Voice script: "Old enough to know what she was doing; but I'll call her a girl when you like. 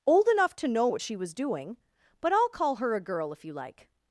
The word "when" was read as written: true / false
false